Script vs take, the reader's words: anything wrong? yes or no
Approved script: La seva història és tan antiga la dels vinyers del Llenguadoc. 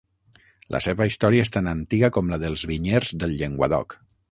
yes